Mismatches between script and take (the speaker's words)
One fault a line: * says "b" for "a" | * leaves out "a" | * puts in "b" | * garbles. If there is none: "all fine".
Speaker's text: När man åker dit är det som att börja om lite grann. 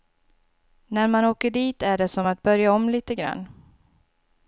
all fine